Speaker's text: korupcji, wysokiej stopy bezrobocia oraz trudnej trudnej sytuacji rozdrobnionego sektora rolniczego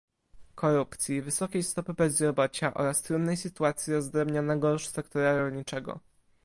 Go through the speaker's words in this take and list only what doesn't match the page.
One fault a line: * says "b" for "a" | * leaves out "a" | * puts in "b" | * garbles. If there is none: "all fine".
* leaves out "trudnej"